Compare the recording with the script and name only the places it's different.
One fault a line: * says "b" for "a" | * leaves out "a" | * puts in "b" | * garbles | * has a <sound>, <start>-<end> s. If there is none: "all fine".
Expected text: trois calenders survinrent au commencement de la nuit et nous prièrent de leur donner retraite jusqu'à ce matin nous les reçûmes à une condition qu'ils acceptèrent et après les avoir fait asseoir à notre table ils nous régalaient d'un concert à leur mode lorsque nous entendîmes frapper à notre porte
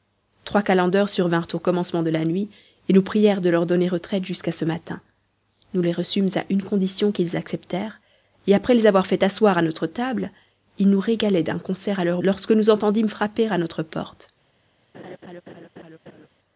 * leaves out "mode"
* has a laugh, 14.9-16.3 s